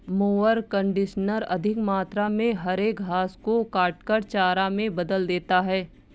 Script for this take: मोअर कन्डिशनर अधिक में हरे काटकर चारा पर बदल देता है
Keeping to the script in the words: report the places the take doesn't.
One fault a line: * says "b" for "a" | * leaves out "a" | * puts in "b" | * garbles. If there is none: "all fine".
* puts in "मात्रा"
* puts in "घास को"
* says "में" for "पर"